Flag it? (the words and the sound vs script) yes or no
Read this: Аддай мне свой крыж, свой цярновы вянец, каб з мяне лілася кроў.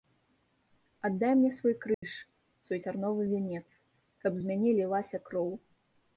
yes